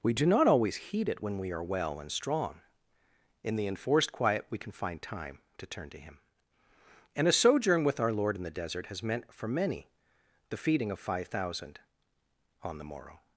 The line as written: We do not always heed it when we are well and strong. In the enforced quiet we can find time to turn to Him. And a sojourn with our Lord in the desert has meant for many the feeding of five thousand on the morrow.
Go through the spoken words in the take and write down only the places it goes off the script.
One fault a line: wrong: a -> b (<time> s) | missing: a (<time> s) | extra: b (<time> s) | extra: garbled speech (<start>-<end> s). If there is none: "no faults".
no faults